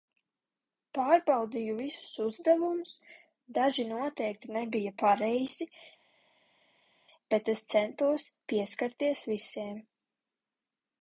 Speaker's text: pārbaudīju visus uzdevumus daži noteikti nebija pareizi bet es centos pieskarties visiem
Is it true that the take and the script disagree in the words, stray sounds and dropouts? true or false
false